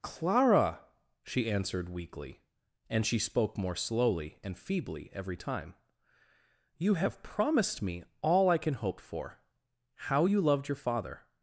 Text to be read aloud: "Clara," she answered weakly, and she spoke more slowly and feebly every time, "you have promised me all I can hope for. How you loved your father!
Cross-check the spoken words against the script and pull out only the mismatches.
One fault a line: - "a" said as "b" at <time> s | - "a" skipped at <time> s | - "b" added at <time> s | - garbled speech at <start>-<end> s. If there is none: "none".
none